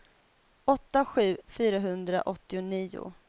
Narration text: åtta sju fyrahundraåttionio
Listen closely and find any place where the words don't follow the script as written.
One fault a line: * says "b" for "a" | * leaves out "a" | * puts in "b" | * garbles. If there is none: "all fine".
all fine